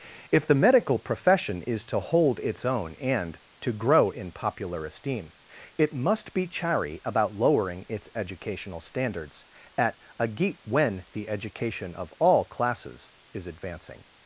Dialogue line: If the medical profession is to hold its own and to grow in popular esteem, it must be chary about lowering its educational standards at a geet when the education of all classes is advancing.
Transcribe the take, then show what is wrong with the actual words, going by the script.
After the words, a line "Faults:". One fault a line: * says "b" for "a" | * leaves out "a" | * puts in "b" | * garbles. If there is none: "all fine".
If the medical profession is to hold its own and to grow in popular esteem, it must be chary about lowering its educational standards at a geet when the education of all classes is advancing.
Faults:
all fine